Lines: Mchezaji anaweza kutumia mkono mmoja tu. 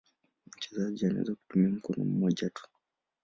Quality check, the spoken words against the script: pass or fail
pass